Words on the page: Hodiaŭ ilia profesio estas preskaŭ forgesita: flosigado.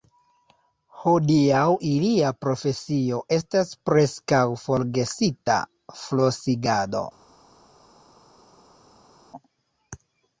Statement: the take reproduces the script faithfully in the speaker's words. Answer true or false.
true